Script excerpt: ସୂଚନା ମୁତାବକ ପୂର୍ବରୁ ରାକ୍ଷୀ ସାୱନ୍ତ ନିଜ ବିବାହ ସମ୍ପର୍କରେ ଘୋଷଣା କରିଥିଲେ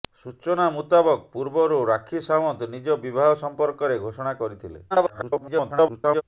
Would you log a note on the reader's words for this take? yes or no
yes